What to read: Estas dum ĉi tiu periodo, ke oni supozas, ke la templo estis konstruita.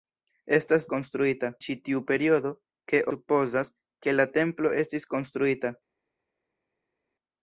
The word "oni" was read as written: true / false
false